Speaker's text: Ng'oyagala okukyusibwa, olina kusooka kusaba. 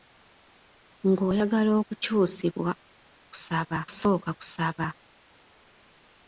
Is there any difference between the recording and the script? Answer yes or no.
yes